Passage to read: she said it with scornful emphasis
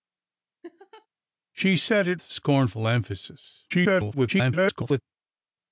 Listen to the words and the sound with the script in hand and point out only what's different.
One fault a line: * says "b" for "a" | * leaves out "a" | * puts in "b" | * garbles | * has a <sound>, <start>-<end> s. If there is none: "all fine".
* has a laugh, 0.6-1.1 s
* leaves out "with"
* garbles